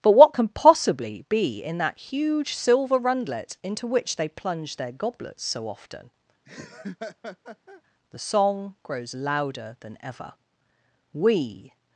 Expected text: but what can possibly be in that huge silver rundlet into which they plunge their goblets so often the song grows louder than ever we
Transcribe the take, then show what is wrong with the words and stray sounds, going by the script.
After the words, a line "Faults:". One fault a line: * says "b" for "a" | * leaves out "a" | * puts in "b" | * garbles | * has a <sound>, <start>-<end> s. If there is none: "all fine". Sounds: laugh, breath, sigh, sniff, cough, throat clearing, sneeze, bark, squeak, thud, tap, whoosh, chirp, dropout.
but what can possibly be in that huge silver rundlet into which they plunge their goblets so often the song grows louder than ever we
Faults:
* has a laugh, 6.4-7.8 s